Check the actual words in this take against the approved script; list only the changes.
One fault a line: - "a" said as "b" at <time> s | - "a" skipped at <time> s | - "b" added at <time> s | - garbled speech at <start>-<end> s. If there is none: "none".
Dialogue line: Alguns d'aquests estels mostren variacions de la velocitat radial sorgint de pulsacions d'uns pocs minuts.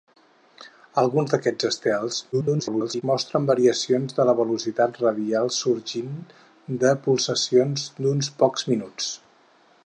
- garbled speech at 2.3-3.0 s